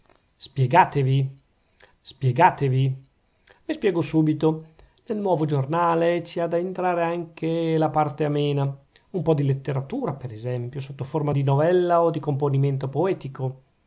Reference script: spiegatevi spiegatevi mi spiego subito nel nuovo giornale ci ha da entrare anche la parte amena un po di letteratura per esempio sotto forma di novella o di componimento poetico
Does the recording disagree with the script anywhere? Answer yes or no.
no